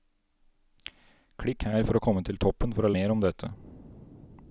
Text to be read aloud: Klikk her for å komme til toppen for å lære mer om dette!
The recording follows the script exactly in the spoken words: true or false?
false